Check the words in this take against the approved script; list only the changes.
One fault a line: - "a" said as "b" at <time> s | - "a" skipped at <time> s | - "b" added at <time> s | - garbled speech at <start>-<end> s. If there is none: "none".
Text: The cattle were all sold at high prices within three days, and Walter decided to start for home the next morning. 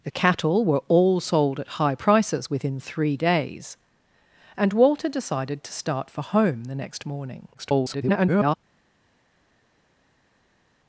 - garbled speech at 7.5-8.6 s